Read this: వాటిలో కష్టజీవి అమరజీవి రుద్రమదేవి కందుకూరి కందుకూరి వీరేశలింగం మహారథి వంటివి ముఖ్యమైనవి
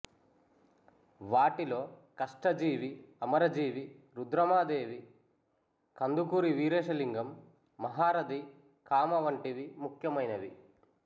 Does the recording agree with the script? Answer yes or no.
no